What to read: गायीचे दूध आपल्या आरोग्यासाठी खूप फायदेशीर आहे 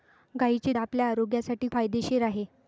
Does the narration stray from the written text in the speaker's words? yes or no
yes